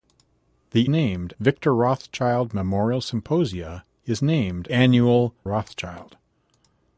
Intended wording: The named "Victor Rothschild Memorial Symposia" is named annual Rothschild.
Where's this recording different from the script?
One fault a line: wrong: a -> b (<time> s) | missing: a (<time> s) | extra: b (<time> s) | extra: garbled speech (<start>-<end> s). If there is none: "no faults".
no faults